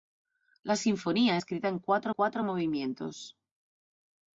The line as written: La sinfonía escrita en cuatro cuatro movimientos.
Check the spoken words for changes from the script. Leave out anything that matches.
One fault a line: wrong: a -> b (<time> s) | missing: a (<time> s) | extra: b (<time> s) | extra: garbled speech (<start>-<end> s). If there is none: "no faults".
no faults